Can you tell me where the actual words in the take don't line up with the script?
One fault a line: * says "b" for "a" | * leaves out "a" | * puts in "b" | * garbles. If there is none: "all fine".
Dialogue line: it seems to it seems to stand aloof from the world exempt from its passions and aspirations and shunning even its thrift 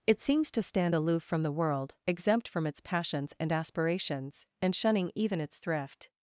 * leaves out "it seems to"